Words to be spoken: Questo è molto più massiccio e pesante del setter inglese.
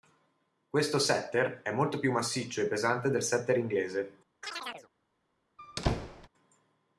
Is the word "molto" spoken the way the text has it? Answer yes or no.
yes